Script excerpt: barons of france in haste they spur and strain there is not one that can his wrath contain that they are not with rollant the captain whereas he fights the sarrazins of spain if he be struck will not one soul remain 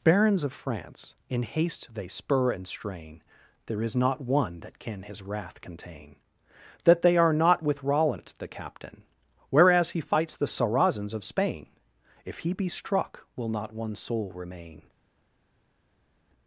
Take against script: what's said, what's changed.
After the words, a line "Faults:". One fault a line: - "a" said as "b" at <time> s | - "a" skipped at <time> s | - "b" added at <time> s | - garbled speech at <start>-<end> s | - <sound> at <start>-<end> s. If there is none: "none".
barons of france in haste they spur and strain there is not one that can his wrath contain that they are not with rollant the captain whereas he fights the sarrazins of spain if he be struck will not one soul remain
Faults:
none